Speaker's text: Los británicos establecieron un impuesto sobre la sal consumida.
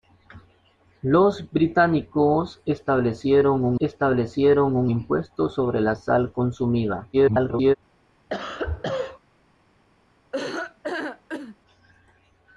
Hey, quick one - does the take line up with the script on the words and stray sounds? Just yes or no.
no